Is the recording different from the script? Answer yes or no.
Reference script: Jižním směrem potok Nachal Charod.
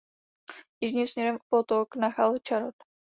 no